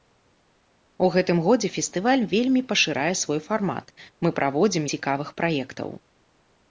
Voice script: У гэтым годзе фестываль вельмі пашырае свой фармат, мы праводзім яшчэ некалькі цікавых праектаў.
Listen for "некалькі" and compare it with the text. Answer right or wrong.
wrong